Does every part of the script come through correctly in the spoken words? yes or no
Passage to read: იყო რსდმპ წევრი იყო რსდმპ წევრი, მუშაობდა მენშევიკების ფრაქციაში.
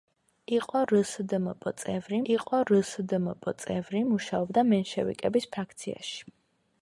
yes